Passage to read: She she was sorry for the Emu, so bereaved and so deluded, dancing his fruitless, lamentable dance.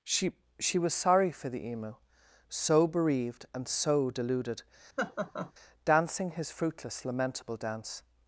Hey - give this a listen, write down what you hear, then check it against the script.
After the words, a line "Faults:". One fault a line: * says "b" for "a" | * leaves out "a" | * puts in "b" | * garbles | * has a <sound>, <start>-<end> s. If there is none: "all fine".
She she was sorry for the Emu, so bereaved and so deluded, dancing his fruitless, lamentable dance.
Faults:
* has a laugh, 5.0-5.5 s